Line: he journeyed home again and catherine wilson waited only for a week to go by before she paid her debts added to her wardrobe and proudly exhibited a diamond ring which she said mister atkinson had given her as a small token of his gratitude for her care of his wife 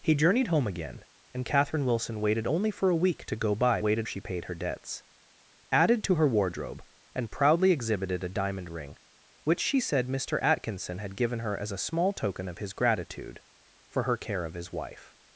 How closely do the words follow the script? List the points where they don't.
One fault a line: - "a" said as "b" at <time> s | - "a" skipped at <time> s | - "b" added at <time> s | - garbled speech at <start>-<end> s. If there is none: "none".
- "before" said as "waited" at 3.8 s